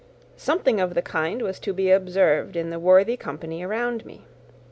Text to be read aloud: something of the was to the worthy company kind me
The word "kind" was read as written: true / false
false